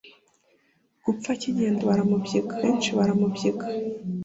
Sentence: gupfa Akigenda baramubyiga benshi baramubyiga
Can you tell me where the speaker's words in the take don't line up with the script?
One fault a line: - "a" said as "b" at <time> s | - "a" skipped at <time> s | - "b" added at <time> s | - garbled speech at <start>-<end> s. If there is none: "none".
none